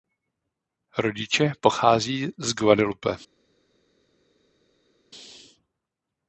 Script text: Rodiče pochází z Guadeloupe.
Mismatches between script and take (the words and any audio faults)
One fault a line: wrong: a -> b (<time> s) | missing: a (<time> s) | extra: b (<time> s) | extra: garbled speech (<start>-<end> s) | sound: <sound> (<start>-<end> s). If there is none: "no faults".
no faults